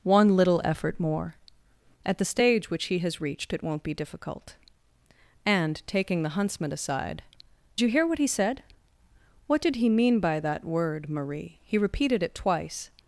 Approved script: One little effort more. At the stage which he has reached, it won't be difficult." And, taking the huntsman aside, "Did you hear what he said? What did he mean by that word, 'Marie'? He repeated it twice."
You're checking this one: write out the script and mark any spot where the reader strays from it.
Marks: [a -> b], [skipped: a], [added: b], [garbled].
One little effort more. At the stage which he has reached, it won't be difficult." And, taking the huntsman aside, [skipped: "Did] you hear what he said? What did he mean by that word, 'Marie'? He repeated it twice."